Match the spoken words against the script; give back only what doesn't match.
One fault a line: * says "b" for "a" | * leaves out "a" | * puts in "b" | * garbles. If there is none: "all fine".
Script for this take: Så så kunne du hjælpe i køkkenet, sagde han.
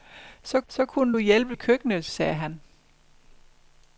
all fine